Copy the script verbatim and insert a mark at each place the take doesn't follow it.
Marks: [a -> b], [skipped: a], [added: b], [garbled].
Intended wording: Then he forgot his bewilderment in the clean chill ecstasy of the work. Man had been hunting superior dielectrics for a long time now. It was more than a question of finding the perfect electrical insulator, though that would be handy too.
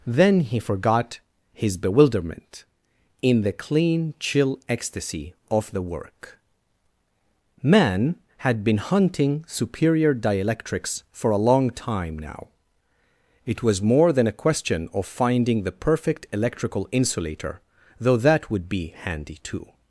Then he forgot his bewilderment in the clean chill ecstasy of the work. Man had been hunting superior dielectrics for a long time now. It was more than a question of finding the perfect electrical insulator, though that would be handy too.